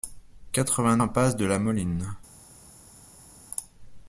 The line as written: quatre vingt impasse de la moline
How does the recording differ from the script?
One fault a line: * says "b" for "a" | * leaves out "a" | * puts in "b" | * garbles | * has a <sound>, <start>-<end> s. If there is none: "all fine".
all fine